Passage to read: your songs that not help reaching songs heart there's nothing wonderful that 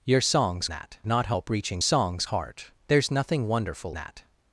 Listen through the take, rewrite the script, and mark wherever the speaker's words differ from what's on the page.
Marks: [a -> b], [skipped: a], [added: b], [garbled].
your songs that not help reaching songs heart there's nothing wonderful that